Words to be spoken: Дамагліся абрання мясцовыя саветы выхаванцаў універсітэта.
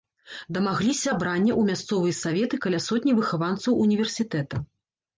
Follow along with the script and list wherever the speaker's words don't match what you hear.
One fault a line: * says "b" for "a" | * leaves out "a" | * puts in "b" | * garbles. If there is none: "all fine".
* puts in "ў"
* puts in "каля сотні"